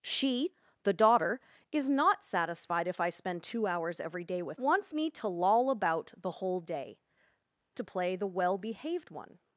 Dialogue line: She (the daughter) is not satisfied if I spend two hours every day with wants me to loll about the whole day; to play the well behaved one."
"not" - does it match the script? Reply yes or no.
yes